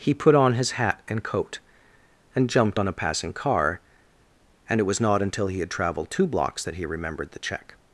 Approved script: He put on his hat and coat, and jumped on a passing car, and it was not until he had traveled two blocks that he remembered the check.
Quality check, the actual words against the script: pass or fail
pass